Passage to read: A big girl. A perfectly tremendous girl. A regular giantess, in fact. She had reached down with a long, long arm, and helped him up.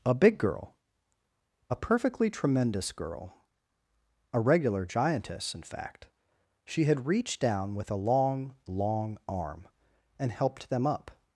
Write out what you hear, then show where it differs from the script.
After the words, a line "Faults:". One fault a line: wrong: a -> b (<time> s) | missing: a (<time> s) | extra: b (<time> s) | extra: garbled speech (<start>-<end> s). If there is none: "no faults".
A big girl. A perfectly tremendous girl. A regular giantess, in fact. She had reached down with a long, long arm, and helped them up.
Faults:
wrong: him -> them (10.7 s)